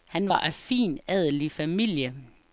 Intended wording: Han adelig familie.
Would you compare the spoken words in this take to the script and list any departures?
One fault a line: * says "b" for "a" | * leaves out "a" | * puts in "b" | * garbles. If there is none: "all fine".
* puts in "var af fin"